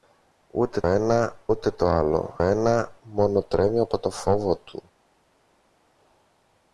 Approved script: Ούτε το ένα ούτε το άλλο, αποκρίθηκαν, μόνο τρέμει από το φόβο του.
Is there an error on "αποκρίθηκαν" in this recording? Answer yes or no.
yes